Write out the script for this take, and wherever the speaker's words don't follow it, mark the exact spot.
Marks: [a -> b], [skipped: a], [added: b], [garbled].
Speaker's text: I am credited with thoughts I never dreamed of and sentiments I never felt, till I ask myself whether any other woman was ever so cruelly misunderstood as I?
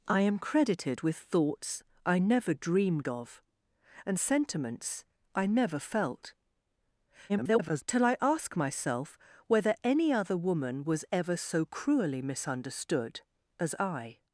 I am credited with thoughts I never dreamed of and sentiments I never felt, [garbled] till I ask myself whether any other woman was ever so cruelly misunderstood as I?